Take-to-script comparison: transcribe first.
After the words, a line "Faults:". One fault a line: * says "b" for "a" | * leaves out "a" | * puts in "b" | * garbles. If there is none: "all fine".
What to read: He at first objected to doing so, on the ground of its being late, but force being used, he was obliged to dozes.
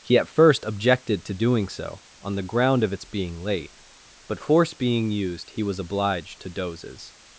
He at first objected to doing so, on the ground of its being late, but force being used, he was obliged to dozes.
Faults:
all fine